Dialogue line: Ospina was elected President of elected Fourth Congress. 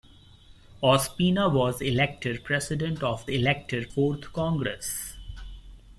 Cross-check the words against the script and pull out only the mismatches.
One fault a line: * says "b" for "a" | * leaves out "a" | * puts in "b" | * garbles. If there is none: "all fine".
all fine